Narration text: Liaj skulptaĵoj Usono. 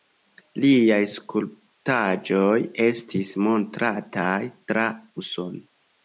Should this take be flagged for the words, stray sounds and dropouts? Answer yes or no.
yes